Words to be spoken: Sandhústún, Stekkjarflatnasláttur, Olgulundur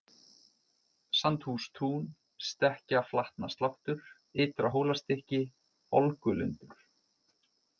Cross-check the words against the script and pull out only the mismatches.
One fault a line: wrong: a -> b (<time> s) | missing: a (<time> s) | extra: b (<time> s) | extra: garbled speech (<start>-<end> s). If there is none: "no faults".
extra: Ytra Hólastykki (4.5 s)